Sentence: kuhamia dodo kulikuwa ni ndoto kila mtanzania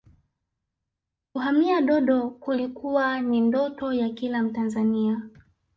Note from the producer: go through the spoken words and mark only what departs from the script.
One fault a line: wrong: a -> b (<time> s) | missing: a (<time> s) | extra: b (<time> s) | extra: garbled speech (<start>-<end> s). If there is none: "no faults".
extra: ya (3.9 s)